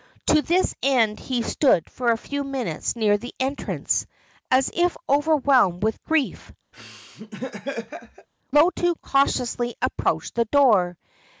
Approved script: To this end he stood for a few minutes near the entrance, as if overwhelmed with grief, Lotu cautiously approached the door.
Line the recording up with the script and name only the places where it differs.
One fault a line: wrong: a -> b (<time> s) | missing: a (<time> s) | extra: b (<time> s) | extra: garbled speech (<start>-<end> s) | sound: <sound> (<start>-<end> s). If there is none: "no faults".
sound: laugh (6.7-8.3 s)